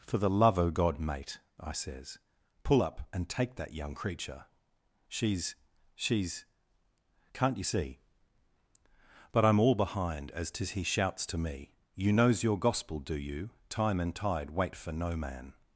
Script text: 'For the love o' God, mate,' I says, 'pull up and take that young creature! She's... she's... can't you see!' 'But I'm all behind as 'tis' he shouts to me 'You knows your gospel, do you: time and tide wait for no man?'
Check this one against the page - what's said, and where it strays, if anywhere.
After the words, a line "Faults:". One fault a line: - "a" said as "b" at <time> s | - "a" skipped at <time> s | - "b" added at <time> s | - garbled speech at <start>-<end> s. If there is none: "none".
'For the love o' God, mate,' I says, 'pull up and take that young creature! She's... she's... can't you see!' 'But I'm all behind as 'tis' he shouts to me 'You knows your gospel, do you: time and tide wait for no man?'
Faults:
none